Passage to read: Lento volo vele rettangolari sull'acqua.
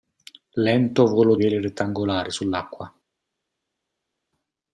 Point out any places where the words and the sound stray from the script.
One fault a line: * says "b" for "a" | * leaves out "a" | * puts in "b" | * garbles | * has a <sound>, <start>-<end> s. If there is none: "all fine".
all fine